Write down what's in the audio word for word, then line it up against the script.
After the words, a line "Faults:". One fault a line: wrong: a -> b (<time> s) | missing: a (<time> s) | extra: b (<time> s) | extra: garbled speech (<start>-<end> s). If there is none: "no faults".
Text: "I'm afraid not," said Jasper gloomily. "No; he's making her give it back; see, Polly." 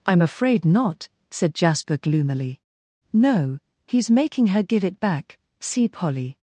"I'm afraid not," said Jasper gloomily. "No; he's making her give it back; see, Polly."
Faults:
no faults